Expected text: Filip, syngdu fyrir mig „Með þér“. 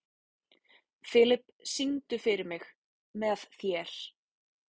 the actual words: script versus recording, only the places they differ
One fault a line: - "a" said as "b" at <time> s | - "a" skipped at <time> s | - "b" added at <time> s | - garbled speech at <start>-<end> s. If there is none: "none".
none